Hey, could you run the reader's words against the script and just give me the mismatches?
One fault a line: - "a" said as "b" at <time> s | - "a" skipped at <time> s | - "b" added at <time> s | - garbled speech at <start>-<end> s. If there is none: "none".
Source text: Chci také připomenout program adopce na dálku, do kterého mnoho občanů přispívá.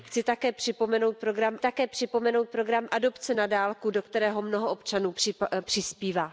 - "také připomenout program" added at 1.6 s